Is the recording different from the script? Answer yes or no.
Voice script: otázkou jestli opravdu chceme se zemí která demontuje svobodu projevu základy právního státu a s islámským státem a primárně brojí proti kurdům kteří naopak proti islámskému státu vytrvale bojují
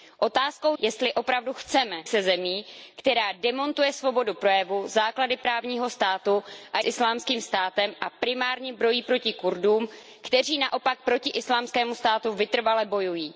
no